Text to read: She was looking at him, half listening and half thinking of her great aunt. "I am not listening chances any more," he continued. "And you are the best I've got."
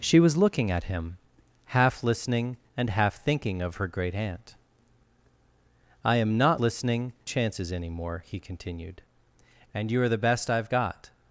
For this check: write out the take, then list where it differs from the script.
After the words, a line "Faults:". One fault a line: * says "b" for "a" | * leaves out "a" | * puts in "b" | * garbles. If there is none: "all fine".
She was looking at him, half listening and half thinking of her great aunt. "I am not listening chances any more," he continued. "And you are the best I've got."
Faults:
all fine